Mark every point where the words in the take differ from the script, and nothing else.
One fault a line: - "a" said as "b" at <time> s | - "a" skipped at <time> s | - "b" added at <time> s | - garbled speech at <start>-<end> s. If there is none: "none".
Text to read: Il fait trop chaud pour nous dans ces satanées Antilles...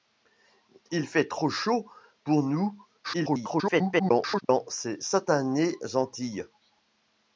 - garbled speech at 3.0-4.4 s